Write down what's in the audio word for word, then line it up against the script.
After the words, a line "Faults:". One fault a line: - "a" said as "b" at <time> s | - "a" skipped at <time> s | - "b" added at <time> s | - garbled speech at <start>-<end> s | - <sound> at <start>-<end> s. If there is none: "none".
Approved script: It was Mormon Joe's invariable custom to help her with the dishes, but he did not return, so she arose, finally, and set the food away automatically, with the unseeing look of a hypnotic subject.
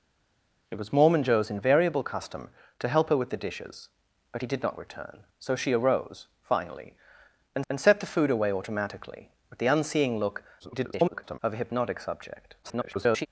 It was Mormon Joe's invariable custom to help her with the dishes, but he did not return, so she arose, finally, and and set the food away automatically, with the unseeing look [garbled] of a hypnotic subject. [garbled]
Faults:
- "and" added at 7.7 s
- garbled speech at 10.6-11.4 s
- garbled speech at 12.6-13.3 s